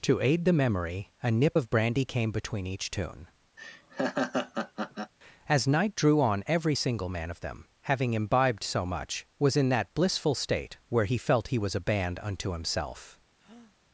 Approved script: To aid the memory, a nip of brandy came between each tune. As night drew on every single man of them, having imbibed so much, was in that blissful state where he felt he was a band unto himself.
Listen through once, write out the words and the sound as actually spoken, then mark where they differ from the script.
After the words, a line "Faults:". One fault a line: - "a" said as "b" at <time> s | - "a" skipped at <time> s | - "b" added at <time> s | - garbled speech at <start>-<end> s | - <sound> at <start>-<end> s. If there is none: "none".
To aid the memory, a nip of brandy came between each tune. As night drew on every single man of them, having imbibed so much, was in that blissful state where he felt he was a band unto himself.
Faults:
- laugh at 3.6-5.1 s
- breath at 13.4-13.8 s